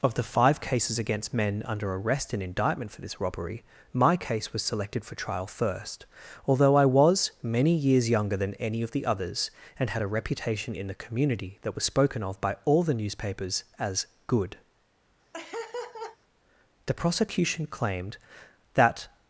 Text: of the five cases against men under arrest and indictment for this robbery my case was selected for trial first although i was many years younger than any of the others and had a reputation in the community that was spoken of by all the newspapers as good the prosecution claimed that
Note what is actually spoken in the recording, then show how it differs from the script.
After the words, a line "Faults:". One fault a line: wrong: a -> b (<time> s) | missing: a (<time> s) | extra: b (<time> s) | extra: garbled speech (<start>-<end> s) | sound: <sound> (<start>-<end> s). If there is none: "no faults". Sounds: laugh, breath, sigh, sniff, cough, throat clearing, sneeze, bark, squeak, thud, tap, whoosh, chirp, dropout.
of the five cases against men under arrest and indictment for this robbery my case was selected for trial first although i was many years younger than any of the others and had a reputation in the community that was spoken of by all the newspapers as good the prosecution claimed that
Faults:
sound: laugh (15.3-16.2 s)